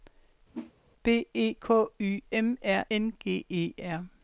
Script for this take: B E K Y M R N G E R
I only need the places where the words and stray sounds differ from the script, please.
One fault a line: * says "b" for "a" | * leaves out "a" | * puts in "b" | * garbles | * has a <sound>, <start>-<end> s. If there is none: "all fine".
* has a whoosh, 0.5-0.7 s